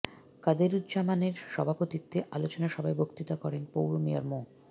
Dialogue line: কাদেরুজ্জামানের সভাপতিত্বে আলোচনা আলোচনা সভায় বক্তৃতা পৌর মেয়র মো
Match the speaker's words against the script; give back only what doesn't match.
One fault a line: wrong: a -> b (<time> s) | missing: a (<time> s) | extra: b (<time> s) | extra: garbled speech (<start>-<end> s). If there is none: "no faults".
missing: আলোচনা (2.7 s)
extra: করেন (3.4 s)